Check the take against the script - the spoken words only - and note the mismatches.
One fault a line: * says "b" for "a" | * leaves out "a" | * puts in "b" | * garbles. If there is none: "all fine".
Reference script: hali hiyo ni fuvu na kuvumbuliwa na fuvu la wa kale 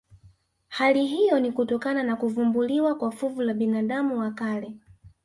* says "kutokana" for "fuvu"
* says "kwa" for "na"
* puts in "binadamu"